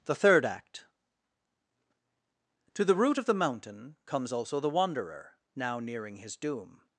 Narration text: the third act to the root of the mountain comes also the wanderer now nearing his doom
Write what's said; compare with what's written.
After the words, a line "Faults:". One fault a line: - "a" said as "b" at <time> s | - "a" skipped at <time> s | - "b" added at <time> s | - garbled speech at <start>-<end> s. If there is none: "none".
the third act to the root of the mountain comes also the wanderer now nearing his doom
Faults:
none